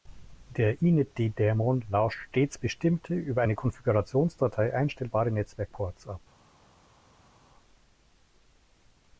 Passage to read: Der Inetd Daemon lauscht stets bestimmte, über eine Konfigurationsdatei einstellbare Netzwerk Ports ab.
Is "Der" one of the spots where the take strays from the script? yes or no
no